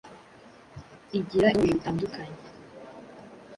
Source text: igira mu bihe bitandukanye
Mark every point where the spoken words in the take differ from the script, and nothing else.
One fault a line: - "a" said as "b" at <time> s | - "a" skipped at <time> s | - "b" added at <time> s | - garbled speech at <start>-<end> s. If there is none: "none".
none